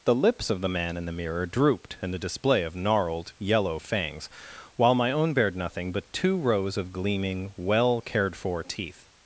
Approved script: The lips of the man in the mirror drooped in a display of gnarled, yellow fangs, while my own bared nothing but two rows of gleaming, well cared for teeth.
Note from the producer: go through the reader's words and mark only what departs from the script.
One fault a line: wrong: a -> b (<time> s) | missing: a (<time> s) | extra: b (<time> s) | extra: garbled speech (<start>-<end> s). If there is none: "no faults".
wrong: a -> the (2.1 s)